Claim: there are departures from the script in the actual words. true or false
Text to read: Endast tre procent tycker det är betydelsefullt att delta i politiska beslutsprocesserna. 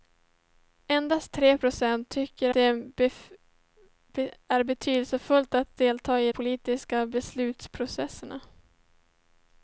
false